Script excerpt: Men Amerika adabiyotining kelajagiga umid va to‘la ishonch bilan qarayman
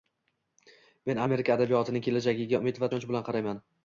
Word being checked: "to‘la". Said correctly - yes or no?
no